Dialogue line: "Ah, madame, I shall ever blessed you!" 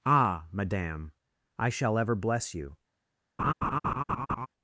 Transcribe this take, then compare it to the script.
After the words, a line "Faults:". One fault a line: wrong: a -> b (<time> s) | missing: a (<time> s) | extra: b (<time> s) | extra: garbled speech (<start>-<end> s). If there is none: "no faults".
"Ah, madame, I shall ever bless you!"
Faults:
wrong: blessed -> bless (2.1 s)